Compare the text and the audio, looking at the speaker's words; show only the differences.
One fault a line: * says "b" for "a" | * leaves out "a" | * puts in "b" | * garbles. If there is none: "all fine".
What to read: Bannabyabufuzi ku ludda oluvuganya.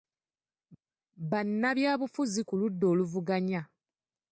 all fine